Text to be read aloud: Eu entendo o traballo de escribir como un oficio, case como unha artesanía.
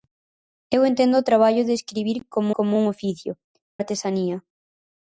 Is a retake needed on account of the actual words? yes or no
yes